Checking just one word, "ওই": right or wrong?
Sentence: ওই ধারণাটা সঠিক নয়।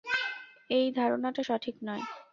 wrong